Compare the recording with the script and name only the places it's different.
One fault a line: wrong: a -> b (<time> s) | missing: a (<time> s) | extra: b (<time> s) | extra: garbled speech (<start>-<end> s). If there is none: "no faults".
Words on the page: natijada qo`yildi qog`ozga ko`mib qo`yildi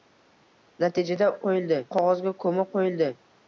no faults